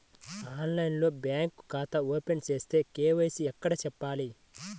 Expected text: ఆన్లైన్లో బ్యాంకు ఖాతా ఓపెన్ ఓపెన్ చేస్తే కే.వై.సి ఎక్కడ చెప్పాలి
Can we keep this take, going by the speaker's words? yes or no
no